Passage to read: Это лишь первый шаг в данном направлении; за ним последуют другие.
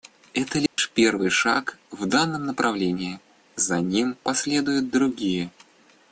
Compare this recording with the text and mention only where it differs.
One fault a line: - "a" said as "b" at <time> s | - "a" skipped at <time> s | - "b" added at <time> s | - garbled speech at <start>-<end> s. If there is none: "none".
none